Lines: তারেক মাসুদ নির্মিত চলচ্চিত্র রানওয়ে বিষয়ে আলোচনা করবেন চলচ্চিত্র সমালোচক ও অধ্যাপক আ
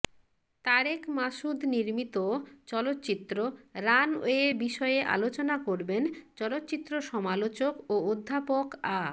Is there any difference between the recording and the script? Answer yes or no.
no